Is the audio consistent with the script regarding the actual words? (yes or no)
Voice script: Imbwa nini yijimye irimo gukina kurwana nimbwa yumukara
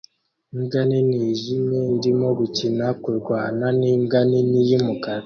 no